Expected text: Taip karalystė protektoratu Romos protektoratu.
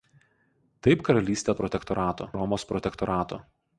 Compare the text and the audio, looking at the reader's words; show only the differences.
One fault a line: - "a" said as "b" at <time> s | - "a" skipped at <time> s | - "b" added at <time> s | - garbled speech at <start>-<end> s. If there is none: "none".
none